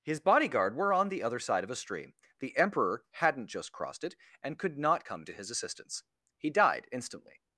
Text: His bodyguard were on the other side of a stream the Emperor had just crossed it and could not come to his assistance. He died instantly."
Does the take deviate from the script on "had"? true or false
true